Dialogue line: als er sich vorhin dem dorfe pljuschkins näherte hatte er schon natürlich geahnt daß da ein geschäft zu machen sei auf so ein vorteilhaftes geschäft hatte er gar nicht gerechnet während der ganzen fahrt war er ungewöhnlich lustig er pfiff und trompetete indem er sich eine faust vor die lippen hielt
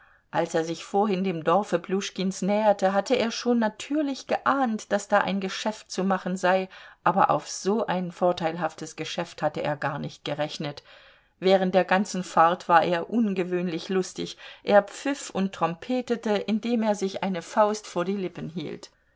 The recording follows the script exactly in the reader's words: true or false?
false